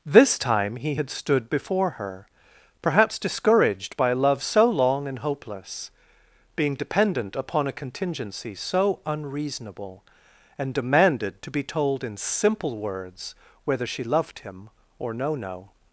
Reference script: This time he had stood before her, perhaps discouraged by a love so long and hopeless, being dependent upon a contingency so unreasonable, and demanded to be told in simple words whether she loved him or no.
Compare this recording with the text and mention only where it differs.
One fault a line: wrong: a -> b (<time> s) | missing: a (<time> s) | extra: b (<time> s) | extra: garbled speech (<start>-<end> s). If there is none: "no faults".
extra: no (15.3 s)